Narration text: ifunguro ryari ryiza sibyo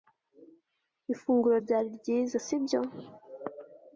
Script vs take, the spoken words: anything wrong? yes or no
no